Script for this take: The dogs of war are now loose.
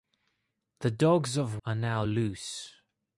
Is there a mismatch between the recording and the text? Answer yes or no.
yes